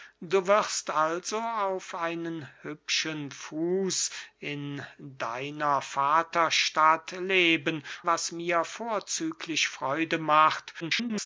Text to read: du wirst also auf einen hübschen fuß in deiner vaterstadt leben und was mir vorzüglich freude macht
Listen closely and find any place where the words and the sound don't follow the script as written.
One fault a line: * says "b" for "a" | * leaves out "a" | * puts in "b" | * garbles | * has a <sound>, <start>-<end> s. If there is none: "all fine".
* leaves out "und"
* garbles